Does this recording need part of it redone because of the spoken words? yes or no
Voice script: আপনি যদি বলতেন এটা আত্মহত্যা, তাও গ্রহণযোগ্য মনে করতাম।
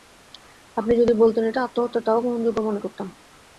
no